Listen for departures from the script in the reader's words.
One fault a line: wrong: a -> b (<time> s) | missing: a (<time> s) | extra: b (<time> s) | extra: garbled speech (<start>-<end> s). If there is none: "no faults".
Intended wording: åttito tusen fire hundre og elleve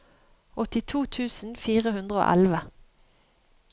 no faults